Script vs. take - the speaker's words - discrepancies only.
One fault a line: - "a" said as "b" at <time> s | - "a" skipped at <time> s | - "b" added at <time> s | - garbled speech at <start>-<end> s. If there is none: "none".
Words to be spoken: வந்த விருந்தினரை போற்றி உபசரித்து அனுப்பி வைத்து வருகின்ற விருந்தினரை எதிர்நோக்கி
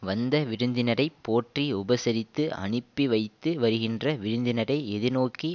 none